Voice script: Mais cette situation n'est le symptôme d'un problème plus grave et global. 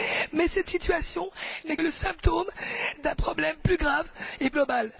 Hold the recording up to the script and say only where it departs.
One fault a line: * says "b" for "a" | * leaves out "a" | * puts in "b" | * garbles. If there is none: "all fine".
all fine